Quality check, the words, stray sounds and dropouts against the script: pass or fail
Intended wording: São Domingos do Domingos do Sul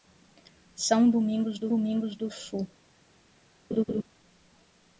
fail